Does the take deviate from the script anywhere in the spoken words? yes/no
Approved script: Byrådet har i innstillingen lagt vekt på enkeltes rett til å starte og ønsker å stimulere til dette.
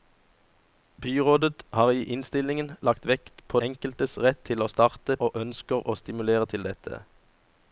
no